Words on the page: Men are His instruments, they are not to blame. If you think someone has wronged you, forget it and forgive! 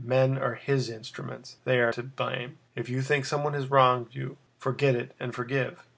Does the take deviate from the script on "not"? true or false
true